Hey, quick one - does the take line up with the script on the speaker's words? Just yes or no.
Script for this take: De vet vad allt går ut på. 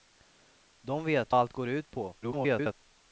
no